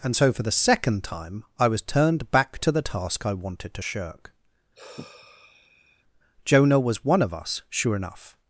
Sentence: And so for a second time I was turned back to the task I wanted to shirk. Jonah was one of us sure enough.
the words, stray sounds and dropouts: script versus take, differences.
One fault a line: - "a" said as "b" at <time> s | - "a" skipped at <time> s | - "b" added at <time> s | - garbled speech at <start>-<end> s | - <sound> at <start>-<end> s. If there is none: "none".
- "a" said as "the" at 0.4 s
- sigh at 4.7-6.0 s